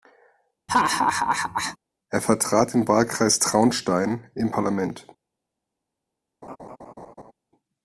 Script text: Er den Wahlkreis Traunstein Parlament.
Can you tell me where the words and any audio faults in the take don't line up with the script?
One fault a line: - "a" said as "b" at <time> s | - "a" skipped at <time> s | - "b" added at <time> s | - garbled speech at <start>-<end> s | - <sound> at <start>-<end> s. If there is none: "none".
- laugh at 0.7-1.8 s
- "vertrat" added at 2.2 s
- "im" added at 4.3 s
- laugh at 6.4-7.3 s